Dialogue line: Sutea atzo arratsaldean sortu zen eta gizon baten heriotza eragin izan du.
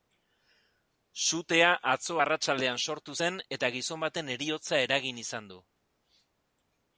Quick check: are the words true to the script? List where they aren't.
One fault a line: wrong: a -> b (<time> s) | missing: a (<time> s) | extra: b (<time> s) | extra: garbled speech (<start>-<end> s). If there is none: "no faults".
no faults